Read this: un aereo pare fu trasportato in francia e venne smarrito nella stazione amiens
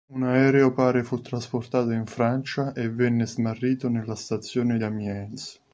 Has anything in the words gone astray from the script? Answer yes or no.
no